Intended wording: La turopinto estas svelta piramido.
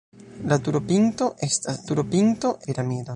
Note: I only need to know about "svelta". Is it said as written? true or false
false